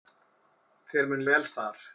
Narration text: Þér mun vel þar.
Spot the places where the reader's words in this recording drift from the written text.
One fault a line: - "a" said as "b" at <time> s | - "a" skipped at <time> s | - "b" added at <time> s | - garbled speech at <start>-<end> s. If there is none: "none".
none